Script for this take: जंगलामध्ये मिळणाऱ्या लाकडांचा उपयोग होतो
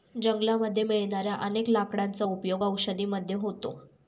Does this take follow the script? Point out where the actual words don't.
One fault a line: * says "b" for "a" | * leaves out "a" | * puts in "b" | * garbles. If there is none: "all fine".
* puts in "अनेक"
* puts in "औषधी मध्ये"